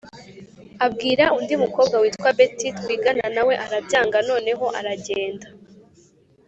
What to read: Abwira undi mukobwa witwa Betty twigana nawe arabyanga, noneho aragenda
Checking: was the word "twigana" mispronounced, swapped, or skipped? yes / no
no